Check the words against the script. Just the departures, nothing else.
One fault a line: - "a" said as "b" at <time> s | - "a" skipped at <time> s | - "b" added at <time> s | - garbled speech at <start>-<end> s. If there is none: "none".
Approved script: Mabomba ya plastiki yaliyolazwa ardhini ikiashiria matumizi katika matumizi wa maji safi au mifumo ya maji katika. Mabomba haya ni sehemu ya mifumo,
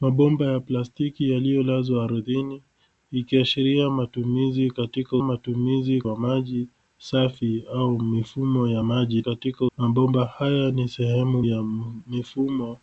none